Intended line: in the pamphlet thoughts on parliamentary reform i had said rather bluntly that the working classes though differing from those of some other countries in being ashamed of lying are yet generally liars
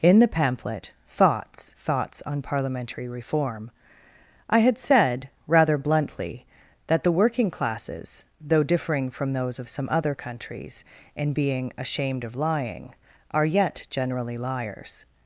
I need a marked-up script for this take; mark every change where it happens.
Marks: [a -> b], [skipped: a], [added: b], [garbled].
in the pamphlet thoughts [added: thoughts] on parliamentary reform i had said rather bluntly that the working classes though differing from those of some other countries in being ashamed of lying are yet generally liars